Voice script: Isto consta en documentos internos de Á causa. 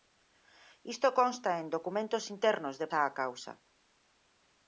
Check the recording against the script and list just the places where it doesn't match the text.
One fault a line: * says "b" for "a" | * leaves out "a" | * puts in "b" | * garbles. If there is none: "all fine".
all fine